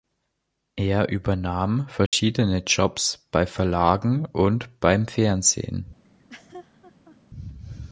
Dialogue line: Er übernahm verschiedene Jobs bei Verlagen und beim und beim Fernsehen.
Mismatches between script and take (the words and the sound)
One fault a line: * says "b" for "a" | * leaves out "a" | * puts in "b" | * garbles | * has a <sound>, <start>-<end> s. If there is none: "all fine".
* has a dropout, 2.1-2.1 s
* leaves out "und beim"
* has a laugh, 6.0-7.2 s